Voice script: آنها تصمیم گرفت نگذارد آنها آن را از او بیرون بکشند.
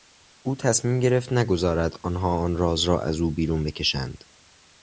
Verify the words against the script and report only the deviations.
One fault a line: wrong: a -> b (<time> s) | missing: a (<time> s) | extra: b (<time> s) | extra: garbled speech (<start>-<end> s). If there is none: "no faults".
wrong: آنها -> او (0.4 s)
extra: راز (2.6 s)